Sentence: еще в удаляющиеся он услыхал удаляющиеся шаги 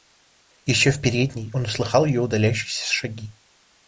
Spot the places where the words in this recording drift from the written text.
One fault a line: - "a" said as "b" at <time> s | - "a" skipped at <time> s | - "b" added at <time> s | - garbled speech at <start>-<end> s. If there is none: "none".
- "удаляющиеся" said as "передней" at 1.0 s
- "ее" added at 2.0 s